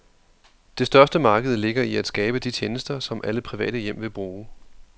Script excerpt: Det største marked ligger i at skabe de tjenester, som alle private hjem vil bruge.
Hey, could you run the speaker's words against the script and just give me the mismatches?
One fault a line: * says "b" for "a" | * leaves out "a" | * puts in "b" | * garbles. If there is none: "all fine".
all fine